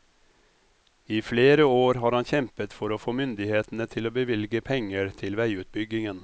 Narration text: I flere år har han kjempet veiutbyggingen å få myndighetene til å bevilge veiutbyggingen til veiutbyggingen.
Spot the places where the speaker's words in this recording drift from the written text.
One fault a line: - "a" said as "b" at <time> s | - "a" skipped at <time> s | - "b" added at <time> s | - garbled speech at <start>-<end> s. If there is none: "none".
- "veiutbyggingen" said as "for" at 2.8 s
- "veiutbyggingen" said as "penger" at 4.6 s